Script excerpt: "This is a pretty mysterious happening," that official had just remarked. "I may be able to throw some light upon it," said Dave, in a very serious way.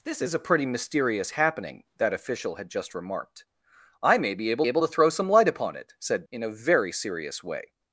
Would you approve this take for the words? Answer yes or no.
no